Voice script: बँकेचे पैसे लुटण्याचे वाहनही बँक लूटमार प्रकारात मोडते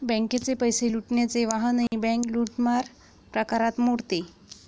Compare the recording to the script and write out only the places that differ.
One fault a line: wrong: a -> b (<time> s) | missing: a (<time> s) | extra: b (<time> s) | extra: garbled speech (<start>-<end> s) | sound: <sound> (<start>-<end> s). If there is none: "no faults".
sound: dropout (1.9-1.9 s)